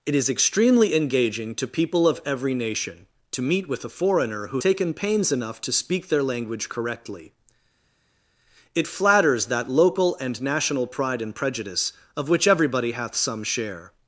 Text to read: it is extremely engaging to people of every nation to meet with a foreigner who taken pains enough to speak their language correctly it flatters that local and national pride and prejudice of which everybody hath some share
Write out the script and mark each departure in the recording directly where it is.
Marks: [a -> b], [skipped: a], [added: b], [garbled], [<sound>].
it is extremely engaging to people of every nation to meet with a foreigner who taken pains enough to speak their language correctly it flatters that local and national pride and prejudice of which everybody hath some share